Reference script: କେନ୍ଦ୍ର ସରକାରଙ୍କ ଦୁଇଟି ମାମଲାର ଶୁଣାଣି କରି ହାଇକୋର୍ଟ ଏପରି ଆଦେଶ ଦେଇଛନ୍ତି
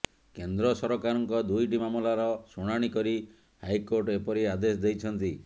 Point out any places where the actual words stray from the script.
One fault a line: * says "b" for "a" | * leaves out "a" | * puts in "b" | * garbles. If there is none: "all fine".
all fine